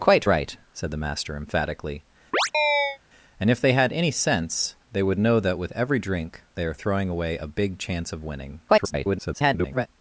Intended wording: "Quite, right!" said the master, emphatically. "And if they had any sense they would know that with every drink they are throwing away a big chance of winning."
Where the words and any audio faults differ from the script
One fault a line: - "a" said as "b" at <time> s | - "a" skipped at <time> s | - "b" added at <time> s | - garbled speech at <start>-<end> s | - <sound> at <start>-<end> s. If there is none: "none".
- chirp at 2.3-3.0 s
- garbled speech at 8.7-9.9 s